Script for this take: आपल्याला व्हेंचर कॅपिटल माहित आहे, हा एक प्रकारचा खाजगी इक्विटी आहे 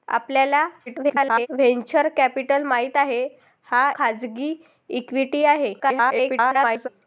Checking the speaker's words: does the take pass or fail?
fail